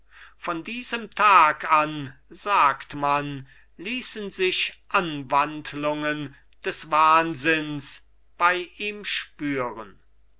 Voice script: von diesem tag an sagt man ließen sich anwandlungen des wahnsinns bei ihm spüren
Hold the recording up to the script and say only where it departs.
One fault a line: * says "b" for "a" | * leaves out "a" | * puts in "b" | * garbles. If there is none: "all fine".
all fine